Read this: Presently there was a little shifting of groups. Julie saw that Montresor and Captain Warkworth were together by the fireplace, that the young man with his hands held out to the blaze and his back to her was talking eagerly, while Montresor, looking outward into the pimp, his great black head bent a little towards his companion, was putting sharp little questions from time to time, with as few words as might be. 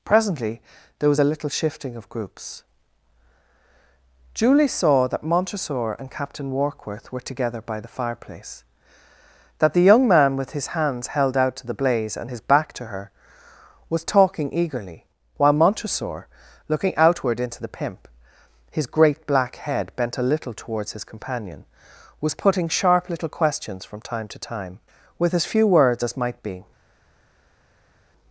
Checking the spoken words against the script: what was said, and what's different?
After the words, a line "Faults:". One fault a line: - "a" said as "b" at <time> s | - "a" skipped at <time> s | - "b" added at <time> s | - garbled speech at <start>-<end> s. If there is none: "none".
Presently there was a little shifting of groups. Julie saw that Montresor and Captain Warkworth were together by the fireplace, that the young man with his hands held out to the blaze and his back to her was talking eagerly, while Montresor, looking outward into the pimp, his great black head bent a little towards his companion, was putting sharp little questions from time to time, with as few words as might be.
Faults:
none